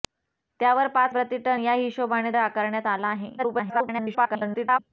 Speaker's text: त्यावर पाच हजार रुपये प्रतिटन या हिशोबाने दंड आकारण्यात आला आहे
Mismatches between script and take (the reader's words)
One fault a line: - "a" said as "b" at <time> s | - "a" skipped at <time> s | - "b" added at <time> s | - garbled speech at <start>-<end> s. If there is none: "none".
- "हजार रुपये" skipped at 1.1 s
- "दंड" skipped at 2.3 s
- garbled speech at 3.4-4.8 s